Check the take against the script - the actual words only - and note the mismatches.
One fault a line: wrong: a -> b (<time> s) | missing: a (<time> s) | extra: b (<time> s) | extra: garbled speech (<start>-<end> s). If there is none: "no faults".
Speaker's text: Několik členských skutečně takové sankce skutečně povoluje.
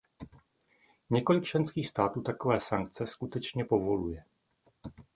wrong: skutečně -> států (1.9 s)